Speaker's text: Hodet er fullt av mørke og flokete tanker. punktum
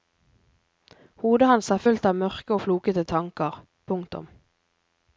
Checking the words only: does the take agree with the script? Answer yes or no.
no